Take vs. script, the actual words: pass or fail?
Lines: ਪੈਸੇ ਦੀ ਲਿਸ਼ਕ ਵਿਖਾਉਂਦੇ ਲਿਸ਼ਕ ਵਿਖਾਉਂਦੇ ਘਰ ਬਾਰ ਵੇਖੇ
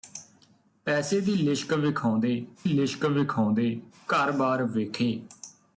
pass